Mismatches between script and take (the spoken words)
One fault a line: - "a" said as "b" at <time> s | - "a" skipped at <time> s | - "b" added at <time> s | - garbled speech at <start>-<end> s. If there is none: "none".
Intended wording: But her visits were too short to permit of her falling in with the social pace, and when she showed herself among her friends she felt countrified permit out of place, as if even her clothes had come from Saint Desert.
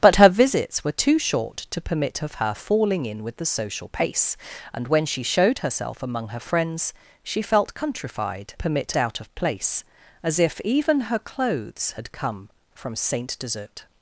none